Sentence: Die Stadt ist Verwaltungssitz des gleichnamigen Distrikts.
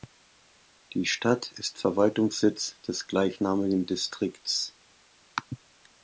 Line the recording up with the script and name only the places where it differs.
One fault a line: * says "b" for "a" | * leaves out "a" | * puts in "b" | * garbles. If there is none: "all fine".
all fine